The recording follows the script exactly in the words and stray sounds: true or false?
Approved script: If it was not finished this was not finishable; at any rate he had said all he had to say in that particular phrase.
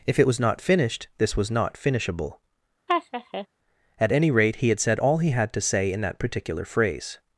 false